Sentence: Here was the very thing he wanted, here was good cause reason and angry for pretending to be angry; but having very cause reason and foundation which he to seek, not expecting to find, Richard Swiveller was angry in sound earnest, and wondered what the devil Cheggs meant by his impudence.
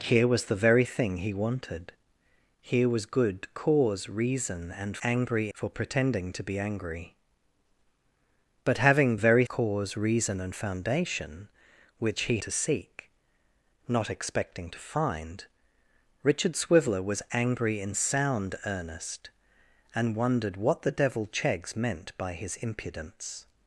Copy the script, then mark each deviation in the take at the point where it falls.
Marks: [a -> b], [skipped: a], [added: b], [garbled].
Here was the very thing he wanted, here was good cause reason and angry for pretending to be angry; but having very cause reason and foundation which he to seek, not expecting to find, Richard Swiveller was angry in sound earnest, and wondered what the devil Cheggs meant by his impudence.